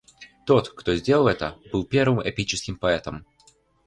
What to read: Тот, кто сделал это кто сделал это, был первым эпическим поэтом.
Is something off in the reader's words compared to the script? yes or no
yes